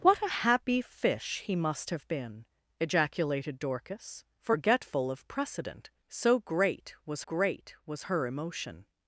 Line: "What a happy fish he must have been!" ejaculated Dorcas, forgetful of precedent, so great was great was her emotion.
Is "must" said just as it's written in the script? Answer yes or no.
yes